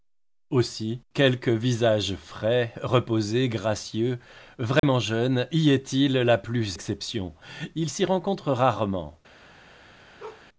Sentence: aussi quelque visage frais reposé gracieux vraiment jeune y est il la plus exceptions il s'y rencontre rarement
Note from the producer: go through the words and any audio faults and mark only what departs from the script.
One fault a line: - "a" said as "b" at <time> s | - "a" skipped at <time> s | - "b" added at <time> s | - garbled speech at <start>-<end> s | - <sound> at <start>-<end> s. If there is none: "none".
- dropout at 4.8-4.8 s
- bark at 10.2-10.5 s